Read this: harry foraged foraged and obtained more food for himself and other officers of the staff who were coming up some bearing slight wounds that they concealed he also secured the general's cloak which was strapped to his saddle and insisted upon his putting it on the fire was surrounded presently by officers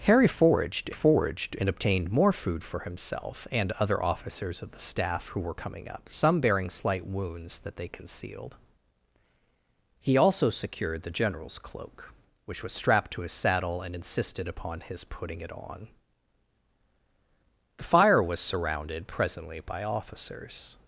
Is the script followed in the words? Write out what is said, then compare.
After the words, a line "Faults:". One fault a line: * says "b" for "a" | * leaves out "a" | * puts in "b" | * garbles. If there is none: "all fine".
harry foraged foraged and obtained more food for himself and other officers of the staff who were coming up some bearing slight wounds that they concealed he also secured the general's cloak which was strapped to his saddle and insisted upon his putting it on the fire was surrounded presently by officers
Faults:
all fine